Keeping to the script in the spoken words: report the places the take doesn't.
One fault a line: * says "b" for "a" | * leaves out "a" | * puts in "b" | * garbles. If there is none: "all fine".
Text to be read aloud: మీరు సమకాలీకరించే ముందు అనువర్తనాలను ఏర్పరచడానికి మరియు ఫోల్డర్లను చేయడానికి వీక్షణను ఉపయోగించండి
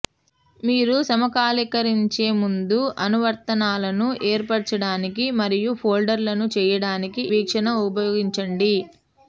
all fine